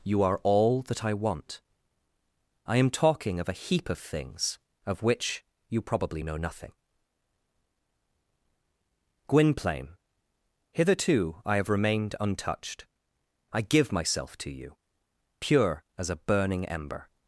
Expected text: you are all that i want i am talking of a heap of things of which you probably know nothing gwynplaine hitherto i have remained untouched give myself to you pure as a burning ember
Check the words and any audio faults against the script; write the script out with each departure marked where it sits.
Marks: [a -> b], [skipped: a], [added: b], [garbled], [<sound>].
you are all that i want i am talking of a heap of things of which you probably know nothing gwynplaine hitherto i have remained untouched [added: i] give myself to you pure as a burning ember